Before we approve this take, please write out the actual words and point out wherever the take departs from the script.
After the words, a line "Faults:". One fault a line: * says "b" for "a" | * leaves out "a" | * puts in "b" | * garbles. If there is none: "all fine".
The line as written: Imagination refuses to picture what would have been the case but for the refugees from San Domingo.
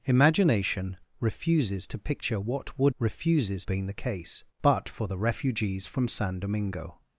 Imagination refuses to picture what would refuses been the case but for the refugees from San Domingo.
Faults:
* says "refuses" for "have"